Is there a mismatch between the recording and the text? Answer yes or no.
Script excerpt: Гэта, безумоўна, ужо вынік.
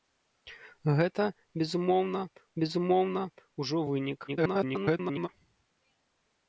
yes